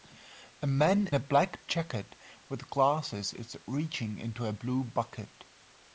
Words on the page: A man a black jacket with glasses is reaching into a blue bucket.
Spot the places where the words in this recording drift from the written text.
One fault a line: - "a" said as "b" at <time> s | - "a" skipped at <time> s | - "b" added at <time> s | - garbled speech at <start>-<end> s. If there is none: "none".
none